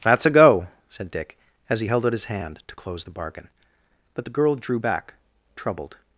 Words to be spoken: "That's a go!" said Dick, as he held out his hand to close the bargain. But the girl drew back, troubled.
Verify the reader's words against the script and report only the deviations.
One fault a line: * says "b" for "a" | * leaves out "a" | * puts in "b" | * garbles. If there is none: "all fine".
all fine